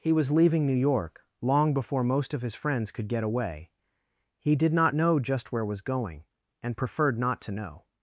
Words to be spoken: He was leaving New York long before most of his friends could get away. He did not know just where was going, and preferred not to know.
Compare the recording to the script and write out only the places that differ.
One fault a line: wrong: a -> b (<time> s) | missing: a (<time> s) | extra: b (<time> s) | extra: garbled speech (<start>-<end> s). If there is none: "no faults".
no faults